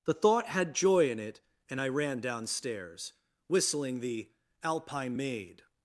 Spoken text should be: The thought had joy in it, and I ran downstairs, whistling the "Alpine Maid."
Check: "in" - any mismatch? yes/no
no